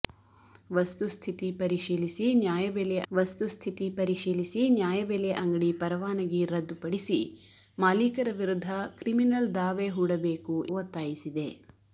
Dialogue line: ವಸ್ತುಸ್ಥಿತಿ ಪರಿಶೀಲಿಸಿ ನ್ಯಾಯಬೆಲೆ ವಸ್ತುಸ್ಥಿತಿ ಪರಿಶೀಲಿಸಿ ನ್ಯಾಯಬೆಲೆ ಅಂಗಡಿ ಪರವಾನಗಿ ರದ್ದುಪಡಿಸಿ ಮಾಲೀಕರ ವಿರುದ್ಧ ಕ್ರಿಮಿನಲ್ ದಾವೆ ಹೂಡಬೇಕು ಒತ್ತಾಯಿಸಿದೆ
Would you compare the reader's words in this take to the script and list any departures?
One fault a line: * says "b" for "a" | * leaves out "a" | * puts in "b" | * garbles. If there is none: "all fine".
all fine